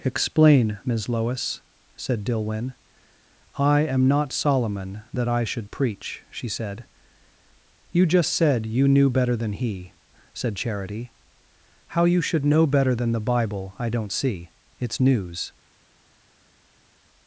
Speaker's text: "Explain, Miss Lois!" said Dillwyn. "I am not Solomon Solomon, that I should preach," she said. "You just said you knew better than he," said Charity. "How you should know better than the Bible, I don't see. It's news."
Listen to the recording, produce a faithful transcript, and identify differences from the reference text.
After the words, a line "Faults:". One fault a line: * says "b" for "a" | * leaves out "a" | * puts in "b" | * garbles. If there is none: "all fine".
"Explain, Miss Lois!" said Dillwyn. "I am not Solomon, that I should preach," she said. "You just said you knew better than he," said Charity. "How you should know better than the Bible, I don't see. It's news."
Faults:
* leaves out "Solomon"